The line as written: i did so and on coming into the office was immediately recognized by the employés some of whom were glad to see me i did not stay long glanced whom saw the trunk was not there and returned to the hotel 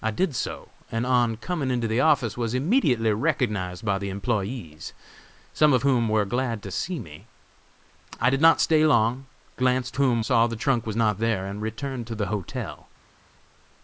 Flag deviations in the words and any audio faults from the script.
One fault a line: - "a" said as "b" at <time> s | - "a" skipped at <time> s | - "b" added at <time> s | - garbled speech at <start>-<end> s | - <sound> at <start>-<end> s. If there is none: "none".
none